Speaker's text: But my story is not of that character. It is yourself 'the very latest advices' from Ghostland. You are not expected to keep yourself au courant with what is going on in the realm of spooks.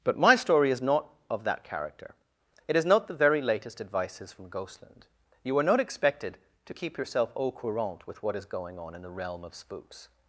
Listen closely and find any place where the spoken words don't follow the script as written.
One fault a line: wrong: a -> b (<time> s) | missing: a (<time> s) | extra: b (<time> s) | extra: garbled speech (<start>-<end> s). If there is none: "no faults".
wrong: yourself -> not (2.9 s)